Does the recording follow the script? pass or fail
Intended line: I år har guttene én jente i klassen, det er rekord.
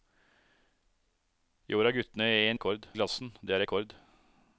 fail